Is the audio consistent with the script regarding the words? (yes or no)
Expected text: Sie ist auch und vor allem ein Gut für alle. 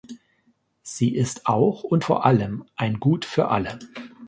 yes